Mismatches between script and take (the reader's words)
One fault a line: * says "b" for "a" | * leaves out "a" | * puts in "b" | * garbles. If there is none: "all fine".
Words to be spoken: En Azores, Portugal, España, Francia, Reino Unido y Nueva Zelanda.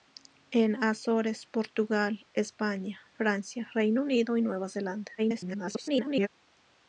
* garbles